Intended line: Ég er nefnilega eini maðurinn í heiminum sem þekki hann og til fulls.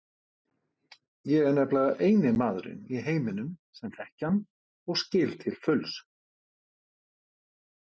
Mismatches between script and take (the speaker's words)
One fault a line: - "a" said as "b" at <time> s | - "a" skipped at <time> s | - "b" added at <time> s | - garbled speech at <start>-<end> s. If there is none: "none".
- "skil" added at 5.1 s